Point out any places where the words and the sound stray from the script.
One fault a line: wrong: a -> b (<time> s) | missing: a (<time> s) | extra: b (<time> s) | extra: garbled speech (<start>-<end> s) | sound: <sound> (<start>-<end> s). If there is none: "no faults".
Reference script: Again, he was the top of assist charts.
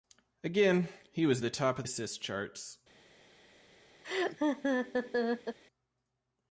sound: laugh (4.0-5.6 s)